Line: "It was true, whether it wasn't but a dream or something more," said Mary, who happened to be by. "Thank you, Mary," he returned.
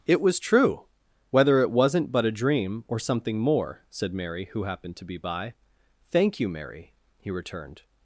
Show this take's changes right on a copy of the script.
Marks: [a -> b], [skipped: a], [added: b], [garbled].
"It was true, whether it wasn't but a dream or something more," said Mary, who happened to be by. "Thank you, Mary," he returned.